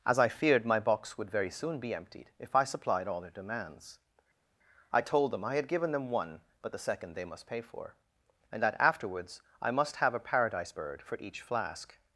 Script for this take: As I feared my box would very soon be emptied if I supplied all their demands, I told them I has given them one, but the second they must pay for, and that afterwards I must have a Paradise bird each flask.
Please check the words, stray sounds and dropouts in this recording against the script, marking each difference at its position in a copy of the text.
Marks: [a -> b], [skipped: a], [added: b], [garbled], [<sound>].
As I feared my box would very soon be emptied if I supplied all their demands, I told them I [has -> had] given them one, but the second they must pay for, and that afterwards I must have a Paradise bird [added: for] each flask.